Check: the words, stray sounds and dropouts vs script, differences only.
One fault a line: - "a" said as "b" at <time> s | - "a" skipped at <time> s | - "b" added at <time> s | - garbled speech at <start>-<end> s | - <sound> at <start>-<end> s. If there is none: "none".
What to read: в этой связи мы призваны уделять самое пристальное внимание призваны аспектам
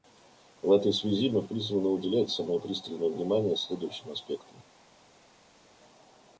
- "призваны" said as "следующим" at 3.5 s